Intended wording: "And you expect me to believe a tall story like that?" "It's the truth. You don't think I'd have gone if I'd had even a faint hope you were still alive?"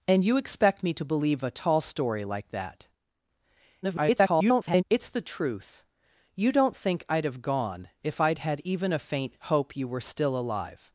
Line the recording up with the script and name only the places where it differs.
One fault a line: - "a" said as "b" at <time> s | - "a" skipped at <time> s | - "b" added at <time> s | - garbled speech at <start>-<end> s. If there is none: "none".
- garbled speech at 3.8-4.8 s